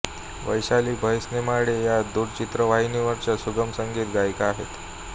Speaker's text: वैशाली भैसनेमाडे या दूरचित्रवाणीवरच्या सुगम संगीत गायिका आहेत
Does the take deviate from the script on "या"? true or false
false